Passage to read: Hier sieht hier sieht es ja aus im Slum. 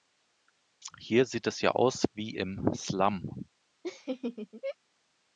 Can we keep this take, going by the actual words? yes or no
no